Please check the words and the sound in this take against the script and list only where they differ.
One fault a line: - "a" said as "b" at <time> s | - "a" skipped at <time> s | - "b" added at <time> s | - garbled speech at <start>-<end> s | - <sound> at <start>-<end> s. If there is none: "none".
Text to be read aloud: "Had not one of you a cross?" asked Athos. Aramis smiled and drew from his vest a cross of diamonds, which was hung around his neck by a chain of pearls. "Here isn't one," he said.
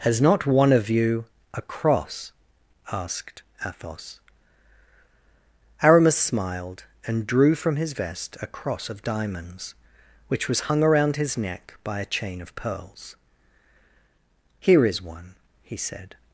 - "Had" said as "Has" at 0.0 s
- "isn't" said as "is" at 14.9 s